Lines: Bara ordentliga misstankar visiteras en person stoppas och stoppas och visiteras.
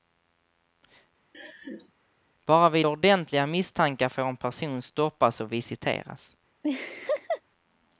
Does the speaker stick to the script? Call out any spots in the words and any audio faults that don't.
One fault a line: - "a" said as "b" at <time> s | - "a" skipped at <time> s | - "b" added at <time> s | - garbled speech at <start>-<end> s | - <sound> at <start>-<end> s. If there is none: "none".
- laugh at 1.3-1.9 s
- "vid" added at 2.7 s
- "visiteras" said as "får" at 4.1 s
- "stoppas och" skipped at 5.5 s
- laugh at 6.6-7.4 s